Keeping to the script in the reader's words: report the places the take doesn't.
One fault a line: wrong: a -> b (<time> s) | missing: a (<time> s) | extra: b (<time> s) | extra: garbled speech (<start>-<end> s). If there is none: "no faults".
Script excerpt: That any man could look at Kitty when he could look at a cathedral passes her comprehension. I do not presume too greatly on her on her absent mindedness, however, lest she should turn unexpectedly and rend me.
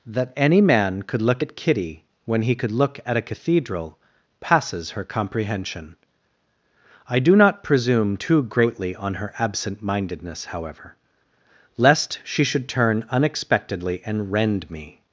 missing: on her (9.3 s)